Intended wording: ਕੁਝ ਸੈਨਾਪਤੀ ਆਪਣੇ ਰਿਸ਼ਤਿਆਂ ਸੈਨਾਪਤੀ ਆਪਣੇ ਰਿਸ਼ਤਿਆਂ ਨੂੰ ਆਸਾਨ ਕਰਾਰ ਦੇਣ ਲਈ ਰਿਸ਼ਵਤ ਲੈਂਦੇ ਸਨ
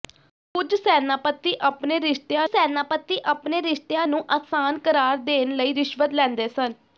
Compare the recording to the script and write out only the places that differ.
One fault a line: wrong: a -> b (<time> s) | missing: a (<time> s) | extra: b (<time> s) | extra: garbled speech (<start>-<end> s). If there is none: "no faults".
no faults